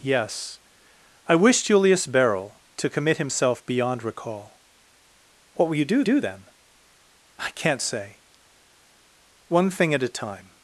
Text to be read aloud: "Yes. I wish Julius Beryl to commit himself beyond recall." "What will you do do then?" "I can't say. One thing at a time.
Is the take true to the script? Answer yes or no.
yes